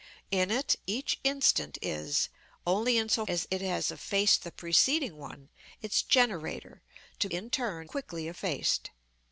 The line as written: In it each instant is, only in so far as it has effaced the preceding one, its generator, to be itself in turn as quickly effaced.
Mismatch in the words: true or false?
true